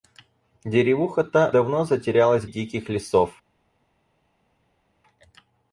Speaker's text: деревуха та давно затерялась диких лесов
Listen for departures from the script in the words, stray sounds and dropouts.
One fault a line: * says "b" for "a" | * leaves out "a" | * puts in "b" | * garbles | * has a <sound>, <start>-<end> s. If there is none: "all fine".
all fine